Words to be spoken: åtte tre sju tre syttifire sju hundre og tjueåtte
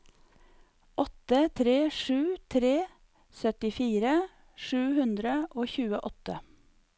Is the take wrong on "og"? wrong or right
right